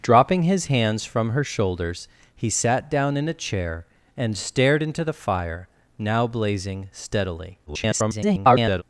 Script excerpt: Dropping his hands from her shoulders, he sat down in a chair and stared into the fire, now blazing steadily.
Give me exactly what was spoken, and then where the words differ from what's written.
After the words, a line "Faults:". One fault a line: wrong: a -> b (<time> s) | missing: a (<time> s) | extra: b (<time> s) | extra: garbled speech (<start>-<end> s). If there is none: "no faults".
Dropping his hands from her shoulders, he sat down in a chair and stared into the fire, now blazing steadily. [garbled]
Faults:
extra: garbled speech (7.7-8.8 s)